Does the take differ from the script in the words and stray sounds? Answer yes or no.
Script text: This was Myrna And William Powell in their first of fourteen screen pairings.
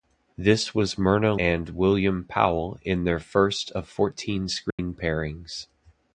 yes